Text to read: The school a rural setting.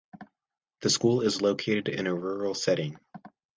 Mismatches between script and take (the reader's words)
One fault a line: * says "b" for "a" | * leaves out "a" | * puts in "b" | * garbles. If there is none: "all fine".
* puts in "is located in"